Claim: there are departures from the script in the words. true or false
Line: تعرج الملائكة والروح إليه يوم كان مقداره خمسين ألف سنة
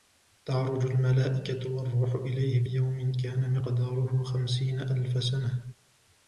false